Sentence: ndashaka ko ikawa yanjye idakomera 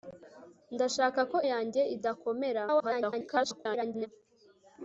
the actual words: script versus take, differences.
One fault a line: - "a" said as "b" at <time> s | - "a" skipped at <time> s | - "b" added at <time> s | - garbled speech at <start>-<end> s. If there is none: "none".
- "ikawa" skipped at 1.4 s
- garbled speech at 2.7-4.1 s